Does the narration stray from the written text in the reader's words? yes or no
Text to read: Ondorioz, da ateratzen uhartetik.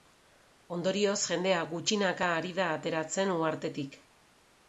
yes